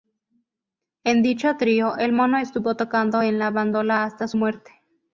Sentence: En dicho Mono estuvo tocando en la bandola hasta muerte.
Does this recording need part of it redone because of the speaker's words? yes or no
yes